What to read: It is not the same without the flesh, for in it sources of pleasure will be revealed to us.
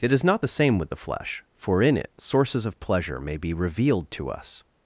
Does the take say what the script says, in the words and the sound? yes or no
no